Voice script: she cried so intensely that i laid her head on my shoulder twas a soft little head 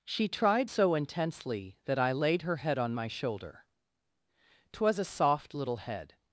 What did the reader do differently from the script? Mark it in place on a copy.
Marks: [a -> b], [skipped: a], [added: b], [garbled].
she [cried -> tried] so intensely that i laid her head on my shoulder twas a soft little head